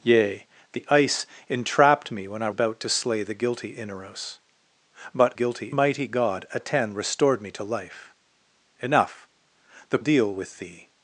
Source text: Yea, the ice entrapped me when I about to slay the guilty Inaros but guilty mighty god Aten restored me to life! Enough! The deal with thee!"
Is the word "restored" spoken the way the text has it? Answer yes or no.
yes